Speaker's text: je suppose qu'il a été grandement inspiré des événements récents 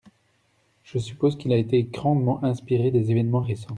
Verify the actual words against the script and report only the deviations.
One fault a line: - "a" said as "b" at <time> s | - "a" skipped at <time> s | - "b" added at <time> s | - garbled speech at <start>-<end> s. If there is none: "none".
none